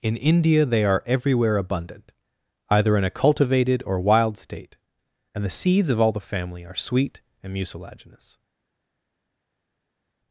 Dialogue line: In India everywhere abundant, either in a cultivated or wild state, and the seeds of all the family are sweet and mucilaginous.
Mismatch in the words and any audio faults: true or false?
true